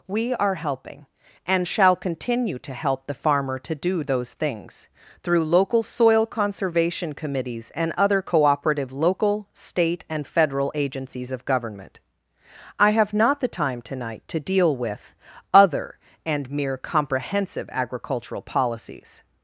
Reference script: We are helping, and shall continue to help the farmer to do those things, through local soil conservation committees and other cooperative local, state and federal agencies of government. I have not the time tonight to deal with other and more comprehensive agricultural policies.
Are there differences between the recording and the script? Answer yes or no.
yes